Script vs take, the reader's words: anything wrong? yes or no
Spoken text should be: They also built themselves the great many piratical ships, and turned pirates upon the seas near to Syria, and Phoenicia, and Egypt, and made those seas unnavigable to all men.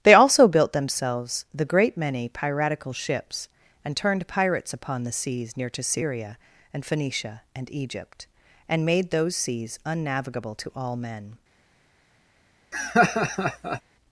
no